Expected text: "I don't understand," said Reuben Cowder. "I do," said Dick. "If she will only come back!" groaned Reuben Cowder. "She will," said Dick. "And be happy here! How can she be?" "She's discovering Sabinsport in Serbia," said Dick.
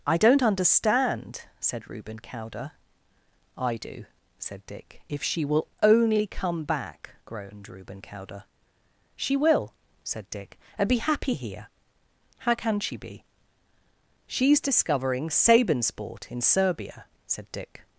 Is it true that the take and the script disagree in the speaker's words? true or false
false